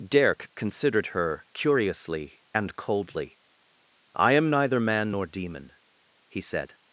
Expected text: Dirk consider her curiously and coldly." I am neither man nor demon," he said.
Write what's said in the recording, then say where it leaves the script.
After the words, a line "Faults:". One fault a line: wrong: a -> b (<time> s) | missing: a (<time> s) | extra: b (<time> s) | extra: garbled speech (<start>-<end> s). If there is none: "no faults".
Dirk considered her curiously and coldly." I am neither man nor demon," he said.
Faults:
wrong: consider -> considered (0.6 s)